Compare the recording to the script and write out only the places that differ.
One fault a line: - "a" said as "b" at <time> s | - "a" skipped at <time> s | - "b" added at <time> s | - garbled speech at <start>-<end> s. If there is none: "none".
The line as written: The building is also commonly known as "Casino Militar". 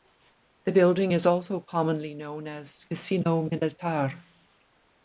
none